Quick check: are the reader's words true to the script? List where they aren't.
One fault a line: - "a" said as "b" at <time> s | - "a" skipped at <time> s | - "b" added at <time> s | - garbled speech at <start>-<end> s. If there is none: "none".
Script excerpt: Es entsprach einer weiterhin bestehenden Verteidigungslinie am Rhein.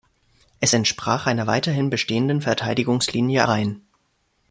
- "am" skipped at 3.4 s